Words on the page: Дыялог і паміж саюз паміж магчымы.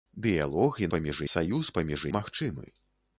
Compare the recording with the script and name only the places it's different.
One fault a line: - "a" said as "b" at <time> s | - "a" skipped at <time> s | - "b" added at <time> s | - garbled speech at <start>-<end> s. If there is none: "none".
none